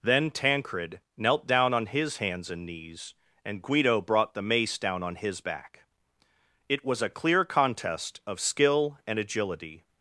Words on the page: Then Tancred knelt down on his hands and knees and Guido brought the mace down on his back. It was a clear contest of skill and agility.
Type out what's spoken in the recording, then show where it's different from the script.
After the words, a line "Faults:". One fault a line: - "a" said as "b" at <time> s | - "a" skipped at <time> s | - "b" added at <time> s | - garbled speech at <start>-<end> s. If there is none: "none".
Then Tancred knelt down on his hands and knees and Guido brought the mace down on his back. It was a clear contest of skill and agility.
Faults:
none